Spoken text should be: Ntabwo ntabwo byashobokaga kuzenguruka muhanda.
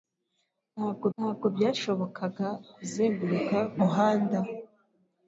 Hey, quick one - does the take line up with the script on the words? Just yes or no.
yes